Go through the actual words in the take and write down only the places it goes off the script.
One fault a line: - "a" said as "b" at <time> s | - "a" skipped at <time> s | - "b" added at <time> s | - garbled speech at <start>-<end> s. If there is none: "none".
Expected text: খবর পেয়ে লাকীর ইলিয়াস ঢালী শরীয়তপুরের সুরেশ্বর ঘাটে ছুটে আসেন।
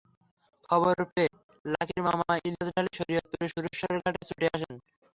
- "মামা" added at 2.1 s